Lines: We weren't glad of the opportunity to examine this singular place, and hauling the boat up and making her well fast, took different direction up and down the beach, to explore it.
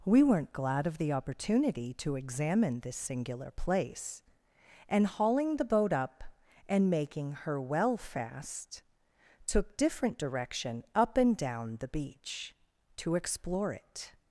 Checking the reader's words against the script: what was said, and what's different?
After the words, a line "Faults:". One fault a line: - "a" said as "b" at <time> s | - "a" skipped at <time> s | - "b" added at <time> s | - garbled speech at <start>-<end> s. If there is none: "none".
We weren't glad of the opportunity to examine this singular place, and hauling the boat up and making her well fast, took different direction up and down the beach, to explore it.
Faults:
none